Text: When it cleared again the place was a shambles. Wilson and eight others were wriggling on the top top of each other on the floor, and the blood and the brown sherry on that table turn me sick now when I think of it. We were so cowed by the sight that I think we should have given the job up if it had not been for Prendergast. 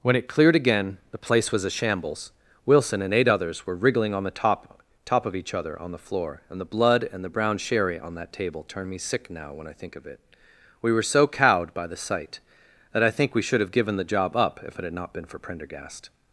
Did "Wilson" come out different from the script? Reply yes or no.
no